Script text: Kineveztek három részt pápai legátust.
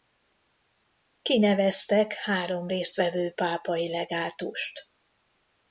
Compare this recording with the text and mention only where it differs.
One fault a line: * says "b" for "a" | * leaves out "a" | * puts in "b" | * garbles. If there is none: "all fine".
* puts in "vevő"